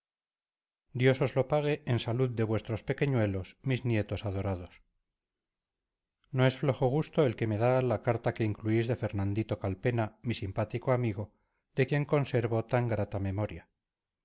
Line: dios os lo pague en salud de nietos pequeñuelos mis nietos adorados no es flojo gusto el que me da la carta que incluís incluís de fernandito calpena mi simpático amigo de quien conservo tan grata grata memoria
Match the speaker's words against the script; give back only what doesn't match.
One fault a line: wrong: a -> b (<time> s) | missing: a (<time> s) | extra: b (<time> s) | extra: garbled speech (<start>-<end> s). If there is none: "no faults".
wrong: nietos -> vuestros (2.5 s)
missing: incluís (8.9 s)
missing: grata (13.2 s)